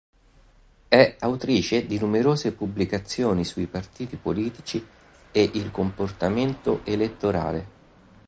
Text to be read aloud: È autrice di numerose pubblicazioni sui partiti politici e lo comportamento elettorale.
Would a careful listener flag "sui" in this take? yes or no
no